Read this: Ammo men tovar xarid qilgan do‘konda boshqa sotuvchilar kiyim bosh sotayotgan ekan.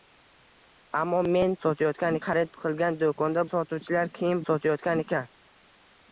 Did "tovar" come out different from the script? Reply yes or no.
yes